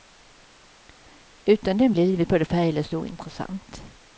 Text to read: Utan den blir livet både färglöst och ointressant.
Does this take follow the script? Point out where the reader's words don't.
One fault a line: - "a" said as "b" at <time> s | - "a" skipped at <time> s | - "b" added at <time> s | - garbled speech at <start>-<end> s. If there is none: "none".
none